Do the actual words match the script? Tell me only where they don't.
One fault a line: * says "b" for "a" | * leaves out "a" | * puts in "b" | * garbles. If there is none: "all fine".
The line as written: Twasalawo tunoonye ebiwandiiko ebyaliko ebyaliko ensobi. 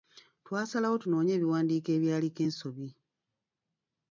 * leaves out "ebyaliko"